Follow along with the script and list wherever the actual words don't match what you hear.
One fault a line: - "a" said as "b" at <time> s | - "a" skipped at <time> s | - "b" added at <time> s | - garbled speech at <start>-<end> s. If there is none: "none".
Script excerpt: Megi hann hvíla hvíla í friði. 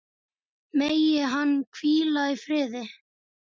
- "hvíla" skipped at 2.3 s